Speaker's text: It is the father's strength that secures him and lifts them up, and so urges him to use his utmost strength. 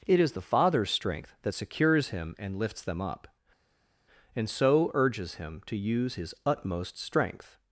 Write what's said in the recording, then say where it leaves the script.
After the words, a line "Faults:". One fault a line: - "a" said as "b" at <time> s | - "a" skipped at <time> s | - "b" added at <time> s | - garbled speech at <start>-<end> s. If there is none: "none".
It is the father's strength that secures him and lifts them up, and so urges him to use his utmost strength.
Faults:
none